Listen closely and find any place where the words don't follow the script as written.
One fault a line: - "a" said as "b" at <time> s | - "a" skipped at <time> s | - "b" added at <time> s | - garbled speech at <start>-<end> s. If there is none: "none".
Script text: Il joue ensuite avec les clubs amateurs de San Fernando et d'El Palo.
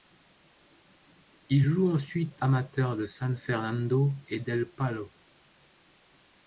- "avec les clubs" skipped at 2.4 s